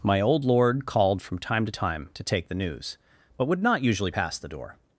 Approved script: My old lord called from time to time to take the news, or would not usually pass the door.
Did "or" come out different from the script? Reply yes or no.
yes